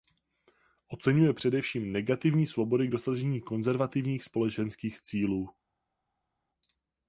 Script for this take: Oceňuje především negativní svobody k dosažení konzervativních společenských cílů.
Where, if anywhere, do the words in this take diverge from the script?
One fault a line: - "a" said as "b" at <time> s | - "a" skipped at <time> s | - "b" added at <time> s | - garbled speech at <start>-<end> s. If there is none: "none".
none